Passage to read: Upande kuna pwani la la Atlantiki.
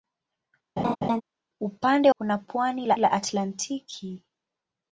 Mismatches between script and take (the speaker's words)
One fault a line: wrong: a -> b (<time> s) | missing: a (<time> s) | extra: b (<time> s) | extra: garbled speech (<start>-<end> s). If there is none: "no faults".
no faults